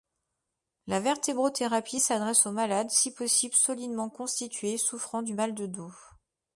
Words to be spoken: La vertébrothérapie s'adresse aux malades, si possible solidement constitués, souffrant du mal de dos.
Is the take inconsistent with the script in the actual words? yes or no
no